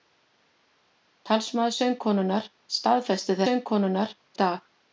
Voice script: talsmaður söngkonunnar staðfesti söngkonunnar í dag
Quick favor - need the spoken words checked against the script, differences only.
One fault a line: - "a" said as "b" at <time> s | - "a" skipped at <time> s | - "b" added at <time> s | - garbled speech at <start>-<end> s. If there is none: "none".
none